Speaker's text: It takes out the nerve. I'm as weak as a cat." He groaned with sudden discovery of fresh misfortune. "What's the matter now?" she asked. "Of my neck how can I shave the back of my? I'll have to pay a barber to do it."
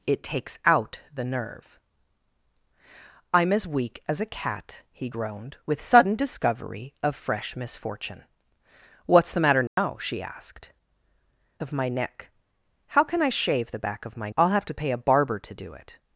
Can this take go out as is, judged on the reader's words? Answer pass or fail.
pass